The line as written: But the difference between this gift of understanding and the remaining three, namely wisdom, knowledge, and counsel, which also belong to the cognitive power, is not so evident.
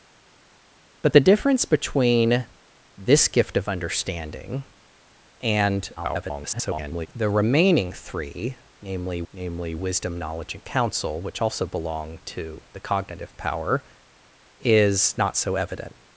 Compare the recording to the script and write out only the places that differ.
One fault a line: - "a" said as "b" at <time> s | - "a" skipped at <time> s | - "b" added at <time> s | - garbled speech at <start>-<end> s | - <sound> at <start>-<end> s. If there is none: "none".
- garbled speech at 6.0-7.1 s
- "namely" added at 9.3 s